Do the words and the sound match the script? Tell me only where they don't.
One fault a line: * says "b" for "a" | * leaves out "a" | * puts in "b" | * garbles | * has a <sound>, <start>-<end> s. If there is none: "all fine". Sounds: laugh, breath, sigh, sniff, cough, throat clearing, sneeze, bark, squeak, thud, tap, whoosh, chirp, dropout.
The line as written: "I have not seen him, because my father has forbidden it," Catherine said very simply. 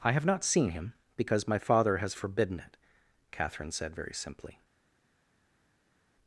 all fine